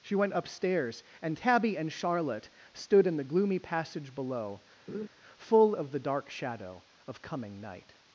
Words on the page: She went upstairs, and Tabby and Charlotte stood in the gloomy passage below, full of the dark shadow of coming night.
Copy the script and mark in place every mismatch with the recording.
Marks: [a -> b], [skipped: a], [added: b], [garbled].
She went upstairs, and Tabby and Charlotte stood in the gloomy passage below, full of the dark shadow of coming night.